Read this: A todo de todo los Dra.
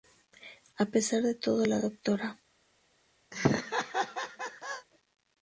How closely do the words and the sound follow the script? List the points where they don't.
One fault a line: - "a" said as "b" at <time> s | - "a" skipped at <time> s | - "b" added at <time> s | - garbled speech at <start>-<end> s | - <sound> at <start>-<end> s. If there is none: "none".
- "todo" said as "pesar" at 0.8 s
- "los" said as "la" at 1.6 s
- laugh at 3.3-4.9 s